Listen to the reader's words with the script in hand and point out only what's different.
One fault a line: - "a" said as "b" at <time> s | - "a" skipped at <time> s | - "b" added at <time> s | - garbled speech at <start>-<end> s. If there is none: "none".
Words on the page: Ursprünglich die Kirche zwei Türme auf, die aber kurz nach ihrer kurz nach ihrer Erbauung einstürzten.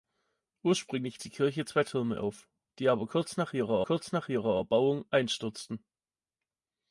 none